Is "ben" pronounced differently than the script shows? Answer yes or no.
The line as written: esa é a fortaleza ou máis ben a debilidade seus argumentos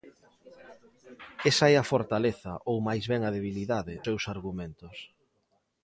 no